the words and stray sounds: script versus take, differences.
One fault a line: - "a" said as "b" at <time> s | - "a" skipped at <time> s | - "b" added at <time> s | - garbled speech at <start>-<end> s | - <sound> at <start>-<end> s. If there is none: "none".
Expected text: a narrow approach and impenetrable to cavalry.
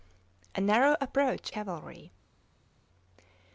- "and impenetrable to" skipped at 1.5 s